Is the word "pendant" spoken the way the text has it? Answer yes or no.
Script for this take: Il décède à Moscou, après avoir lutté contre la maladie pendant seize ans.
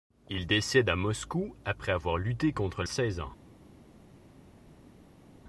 no